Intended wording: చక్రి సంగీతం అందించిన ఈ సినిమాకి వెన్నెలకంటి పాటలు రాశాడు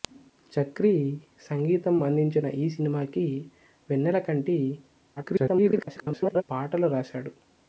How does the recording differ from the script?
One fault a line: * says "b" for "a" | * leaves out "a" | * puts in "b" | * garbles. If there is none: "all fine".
* garbles